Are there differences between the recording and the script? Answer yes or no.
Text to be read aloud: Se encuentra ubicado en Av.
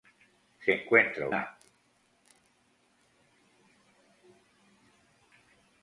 yes